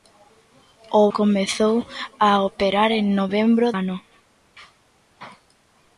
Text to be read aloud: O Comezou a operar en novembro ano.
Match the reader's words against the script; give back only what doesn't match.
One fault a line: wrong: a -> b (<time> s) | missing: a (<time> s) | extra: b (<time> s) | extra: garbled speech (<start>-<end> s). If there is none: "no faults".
no faults